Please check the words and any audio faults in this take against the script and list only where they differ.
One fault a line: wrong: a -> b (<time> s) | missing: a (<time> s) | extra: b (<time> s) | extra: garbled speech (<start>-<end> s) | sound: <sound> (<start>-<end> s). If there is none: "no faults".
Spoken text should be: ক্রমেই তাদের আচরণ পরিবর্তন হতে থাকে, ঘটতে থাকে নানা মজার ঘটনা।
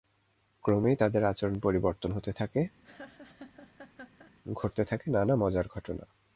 sound: laugh (2.8-4.3 s)